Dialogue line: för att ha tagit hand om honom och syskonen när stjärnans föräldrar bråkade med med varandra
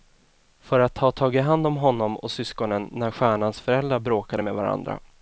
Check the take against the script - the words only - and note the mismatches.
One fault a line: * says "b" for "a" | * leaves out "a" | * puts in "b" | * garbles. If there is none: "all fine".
* leaves out "med"